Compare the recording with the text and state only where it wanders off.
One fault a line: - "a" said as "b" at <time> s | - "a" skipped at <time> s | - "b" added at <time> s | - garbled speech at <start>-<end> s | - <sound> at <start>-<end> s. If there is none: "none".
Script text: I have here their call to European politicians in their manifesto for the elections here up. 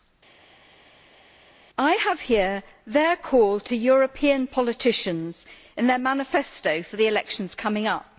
- "here" said as "coming" at 7.5 s